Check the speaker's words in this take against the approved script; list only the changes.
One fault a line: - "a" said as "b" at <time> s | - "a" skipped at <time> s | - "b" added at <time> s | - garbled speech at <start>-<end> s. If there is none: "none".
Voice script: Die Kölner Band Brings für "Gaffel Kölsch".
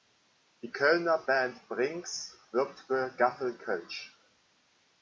- "wirbt" added at 2.5 s